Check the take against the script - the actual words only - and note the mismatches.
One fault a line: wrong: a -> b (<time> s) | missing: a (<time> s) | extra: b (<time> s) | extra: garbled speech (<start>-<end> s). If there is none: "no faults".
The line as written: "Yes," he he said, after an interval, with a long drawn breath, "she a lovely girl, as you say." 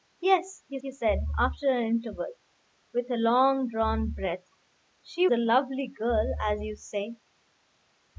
no faults